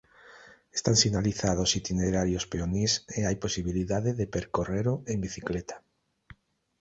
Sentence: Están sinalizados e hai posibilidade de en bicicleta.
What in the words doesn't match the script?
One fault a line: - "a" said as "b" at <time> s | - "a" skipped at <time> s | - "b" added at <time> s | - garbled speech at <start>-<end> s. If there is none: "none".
- "itinerarios peonís" added at 1.8 s
- "percorrelo" added at 4.4 s